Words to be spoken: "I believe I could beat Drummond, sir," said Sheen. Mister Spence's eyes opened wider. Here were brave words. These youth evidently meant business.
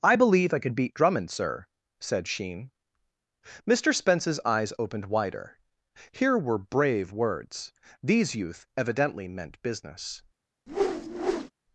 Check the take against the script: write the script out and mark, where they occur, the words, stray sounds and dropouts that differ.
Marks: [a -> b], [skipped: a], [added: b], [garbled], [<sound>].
"I believe I could beat Drummond, sir," said Sheen. Mister Spence's eyes opened wider. Here were brave words. These youth evidently meant business. [whoosh]